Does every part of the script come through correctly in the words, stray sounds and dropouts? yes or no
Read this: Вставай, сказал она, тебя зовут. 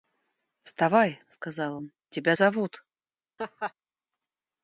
no